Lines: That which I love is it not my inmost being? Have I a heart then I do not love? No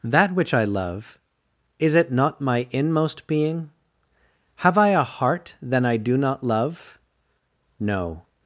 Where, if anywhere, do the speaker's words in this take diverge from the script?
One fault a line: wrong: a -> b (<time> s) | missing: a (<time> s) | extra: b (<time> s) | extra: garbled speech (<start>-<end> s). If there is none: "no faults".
no faults